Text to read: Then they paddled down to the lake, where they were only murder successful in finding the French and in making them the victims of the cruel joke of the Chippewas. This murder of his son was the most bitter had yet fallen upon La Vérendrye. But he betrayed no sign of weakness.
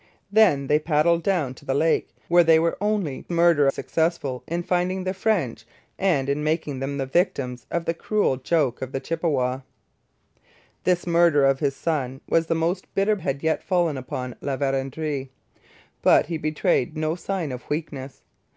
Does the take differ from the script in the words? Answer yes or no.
no